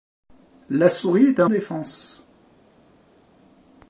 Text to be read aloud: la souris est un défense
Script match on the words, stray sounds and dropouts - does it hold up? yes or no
yes